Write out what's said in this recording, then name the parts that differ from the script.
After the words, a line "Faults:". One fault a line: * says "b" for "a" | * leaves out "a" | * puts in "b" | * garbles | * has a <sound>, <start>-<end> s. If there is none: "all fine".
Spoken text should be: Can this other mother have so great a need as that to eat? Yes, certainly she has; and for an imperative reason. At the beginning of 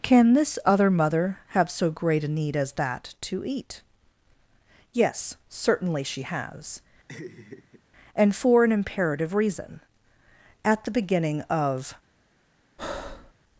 Can this other mother have so great a need as that to eat? Yes, certainly she has; and for an imperative reason. At the beginning of
Faults:
* has a laugh, 7.1-7.8 s
* has a breath, 12.8-13.3 s